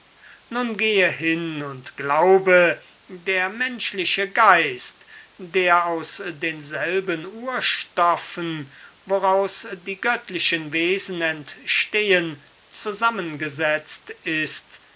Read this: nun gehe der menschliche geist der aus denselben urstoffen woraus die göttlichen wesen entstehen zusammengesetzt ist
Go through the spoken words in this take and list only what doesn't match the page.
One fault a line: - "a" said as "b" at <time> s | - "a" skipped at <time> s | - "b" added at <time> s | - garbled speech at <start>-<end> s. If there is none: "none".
- "hin und glaube" added at 1.1 s